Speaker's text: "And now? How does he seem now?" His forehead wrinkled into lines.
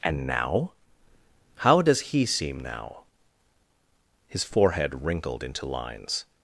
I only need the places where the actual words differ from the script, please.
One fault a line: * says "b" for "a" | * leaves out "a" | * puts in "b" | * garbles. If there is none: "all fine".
all fine